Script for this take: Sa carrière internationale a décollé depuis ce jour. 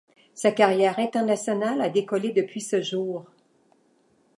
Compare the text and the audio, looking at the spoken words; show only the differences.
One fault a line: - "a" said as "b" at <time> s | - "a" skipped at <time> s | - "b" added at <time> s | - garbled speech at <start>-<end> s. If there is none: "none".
none